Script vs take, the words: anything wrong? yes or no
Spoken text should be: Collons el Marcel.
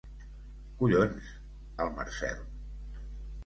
no